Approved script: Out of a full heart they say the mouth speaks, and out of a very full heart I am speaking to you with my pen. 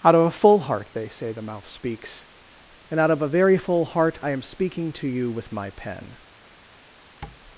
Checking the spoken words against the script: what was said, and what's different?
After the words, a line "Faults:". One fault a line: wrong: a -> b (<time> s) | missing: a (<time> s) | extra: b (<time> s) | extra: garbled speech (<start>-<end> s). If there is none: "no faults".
Out of a full heart they say the mouth speaks, and out of a very full heart I am speaking to you with my pen.
Faults:
no faults